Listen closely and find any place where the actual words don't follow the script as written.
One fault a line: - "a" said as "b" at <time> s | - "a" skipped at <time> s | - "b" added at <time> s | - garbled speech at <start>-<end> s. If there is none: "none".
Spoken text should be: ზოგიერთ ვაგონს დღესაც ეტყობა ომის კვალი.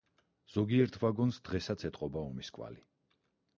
none